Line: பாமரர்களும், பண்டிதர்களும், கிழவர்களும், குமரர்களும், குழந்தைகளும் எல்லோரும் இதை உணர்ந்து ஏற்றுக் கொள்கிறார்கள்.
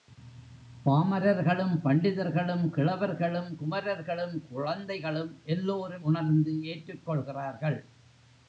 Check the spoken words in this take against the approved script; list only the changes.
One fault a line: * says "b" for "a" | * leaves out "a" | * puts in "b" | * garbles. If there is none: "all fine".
* leaves out "இதை"